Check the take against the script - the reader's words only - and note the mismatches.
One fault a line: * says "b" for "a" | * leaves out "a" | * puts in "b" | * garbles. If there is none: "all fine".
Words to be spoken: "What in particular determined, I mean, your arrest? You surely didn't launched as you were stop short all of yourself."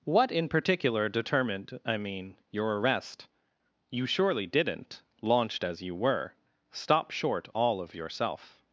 all fine